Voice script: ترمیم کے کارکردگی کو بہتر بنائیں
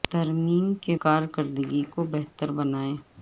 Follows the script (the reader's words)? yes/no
yes